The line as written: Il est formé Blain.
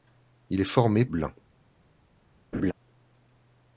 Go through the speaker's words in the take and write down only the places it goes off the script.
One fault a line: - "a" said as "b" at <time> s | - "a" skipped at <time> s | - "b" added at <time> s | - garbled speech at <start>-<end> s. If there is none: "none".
none